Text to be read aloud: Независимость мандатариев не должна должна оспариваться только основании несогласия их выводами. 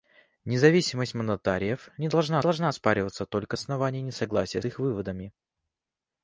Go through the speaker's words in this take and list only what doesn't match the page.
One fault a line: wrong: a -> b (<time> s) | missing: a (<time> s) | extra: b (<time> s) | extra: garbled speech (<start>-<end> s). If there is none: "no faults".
no faults